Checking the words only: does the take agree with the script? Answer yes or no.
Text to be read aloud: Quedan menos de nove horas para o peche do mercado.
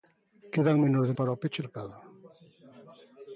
no